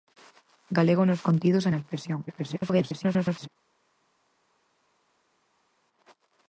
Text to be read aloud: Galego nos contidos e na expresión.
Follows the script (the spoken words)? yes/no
no